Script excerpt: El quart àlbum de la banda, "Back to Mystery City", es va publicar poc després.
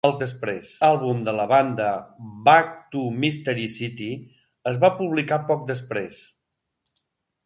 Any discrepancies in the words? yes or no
yes